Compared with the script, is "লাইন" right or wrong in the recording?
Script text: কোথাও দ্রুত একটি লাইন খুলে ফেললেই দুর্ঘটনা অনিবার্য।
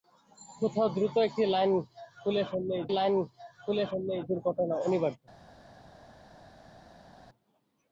right